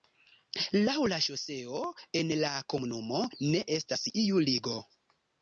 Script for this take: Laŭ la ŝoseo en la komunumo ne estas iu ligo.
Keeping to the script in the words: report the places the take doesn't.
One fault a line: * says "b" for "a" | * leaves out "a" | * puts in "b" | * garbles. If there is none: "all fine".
all fine